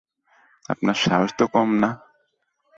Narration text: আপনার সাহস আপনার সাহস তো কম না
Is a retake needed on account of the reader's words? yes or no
yes